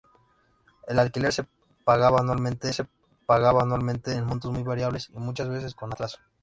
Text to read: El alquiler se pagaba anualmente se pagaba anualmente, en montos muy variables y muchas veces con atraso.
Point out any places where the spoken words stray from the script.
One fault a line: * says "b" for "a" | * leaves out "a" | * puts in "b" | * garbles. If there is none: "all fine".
all fine